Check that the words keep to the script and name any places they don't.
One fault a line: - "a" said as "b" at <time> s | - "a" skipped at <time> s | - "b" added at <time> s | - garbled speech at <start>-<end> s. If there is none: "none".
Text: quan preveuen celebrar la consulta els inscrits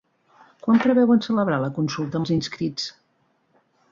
none